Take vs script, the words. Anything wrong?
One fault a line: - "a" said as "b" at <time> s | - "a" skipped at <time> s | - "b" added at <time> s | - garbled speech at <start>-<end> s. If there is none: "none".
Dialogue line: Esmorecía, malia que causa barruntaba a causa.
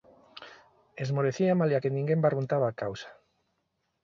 - "causa" said as "ninguén" at 2.0 s